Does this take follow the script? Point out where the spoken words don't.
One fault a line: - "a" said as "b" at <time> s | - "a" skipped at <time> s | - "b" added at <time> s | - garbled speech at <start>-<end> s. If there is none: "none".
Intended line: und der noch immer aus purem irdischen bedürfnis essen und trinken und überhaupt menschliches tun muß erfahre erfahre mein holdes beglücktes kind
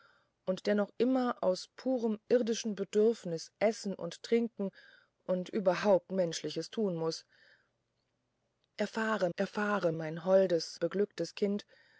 none